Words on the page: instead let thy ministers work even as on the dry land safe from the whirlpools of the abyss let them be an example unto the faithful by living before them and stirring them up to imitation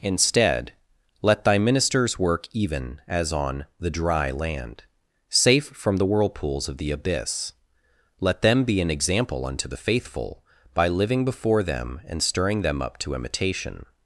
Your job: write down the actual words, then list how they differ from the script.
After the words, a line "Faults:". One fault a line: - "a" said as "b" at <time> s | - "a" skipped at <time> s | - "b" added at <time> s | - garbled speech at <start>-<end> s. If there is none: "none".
instead let thy ministers work even as on the dry land safe from the whirlpools of the abyss let them be an example unto the faithful by living before them and stirring them up to imitation
Faults:
none